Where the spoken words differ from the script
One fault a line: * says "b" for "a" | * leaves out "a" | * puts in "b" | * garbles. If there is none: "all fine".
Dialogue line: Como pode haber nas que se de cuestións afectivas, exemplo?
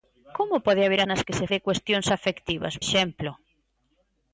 all fine